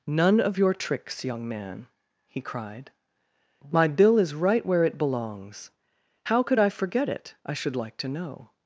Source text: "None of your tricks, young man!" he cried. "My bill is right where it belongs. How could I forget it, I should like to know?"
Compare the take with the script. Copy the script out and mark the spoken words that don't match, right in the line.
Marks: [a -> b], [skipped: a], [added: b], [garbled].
"None of your tricks, young man!" he cried. "My bill is right where it belongs. How could I forget it, I should like to know?"